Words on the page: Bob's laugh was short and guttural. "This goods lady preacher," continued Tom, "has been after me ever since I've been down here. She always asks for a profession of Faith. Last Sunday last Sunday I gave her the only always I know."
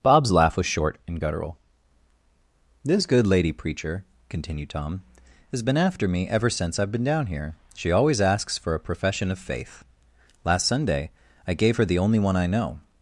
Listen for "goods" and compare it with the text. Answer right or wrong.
wrong